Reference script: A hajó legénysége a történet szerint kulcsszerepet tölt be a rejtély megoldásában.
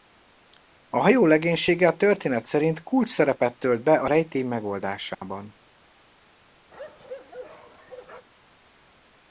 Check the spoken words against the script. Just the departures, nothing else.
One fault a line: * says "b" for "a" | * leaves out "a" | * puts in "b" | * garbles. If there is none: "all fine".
all fine